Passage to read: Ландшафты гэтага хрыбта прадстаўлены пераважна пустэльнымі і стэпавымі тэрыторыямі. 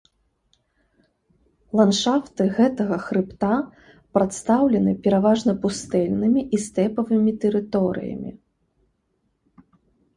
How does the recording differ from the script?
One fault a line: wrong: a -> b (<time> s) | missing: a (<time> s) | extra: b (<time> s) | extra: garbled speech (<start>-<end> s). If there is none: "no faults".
no faults